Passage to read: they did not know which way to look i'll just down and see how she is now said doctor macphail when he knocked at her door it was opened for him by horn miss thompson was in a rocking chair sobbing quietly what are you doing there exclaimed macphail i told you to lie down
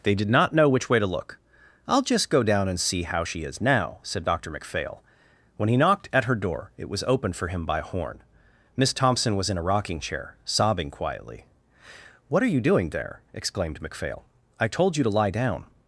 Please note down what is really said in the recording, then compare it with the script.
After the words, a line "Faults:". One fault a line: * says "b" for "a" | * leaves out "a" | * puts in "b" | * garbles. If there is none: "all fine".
they did not know which way to look i'll just go down and see how she is now said doctor macphail when he knocked at her door it was opened for him by horn miss thompson was in a rocking chair sobbing quietly what are you doing there exclaimed macphail i told you to lie down
Faults:
* puts in "go"